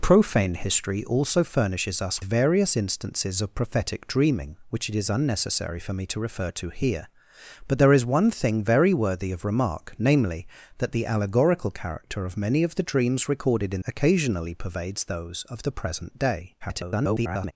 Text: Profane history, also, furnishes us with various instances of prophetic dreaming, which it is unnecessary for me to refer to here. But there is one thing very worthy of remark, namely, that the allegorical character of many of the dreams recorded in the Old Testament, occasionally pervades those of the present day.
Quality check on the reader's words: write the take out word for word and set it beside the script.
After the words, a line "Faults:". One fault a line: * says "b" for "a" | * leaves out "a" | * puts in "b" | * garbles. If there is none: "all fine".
Profane history, also, furnishes us various instances of prophetic dreaming, which it is unnecessary for me to refer to here. But there is one thing very worthy of remark, namely, that the allegorical character of many of the dreams recorded in occasionally pervades those of the present day. [garbled]
Faults:
* leaves out "with"
* leaves out "the Old Testament"
* garbles